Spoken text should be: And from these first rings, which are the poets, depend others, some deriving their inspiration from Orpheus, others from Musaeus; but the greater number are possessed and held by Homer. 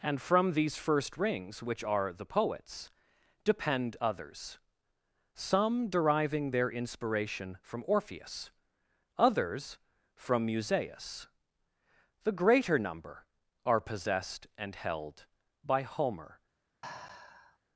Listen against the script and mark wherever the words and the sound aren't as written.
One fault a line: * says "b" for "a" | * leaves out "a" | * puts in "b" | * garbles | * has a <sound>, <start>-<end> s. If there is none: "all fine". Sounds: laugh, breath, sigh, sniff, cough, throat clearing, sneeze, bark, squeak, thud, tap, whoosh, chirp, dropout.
* leaves out "but"
* has a sigh, 16.8-17.6 s